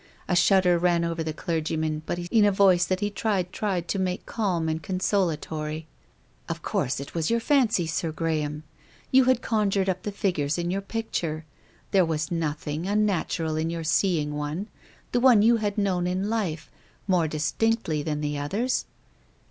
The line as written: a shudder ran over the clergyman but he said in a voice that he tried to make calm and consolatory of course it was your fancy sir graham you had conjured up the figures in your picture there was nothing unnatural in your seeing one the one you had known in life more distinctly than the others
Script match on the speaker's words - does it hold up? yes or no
no